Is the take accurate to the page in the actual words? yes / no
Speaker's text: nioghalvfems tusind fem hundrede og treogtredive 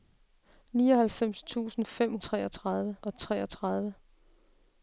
no